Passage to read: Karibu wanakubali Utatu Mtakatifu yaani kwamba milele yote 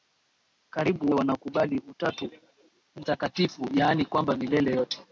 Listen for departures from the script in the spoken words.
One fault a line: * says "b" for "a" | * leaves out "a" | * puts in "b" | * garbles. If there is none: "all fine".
all fine